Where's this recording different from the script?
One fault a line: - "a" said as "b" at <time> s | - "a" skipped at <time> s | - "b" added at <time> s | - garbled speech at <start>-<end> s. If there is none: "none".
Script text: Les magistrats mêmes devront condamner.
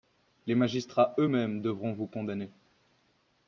- "eux" added at 1.2 s
- "vous" added at 1.9 s